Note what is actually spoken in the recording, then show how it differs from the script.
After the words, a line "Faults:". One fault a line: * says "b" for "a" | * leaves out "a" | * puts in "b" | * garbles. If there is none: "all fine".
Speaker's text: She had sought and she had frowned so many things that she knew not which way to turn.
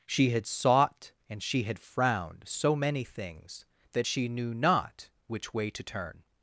She had sought and she had frowned so many things that she knew not which way to turn.
Faults:
all fine